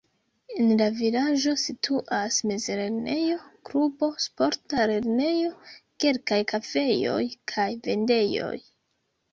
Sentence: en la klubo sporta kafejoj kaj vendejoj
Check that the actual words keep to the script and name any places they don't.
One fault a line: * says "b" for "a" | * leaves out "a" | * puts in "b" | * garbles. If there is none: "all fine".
* puts in "vilaĝo situas mezlernejo"
* puts in "lernejo kelkaj"